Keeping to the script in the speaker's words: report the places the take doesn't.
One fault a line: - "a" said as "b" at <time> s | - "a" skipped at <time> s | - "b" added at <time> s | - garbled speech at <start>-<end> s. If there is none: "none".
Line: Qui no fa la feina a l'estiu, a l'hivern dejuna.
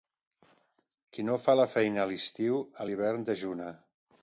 none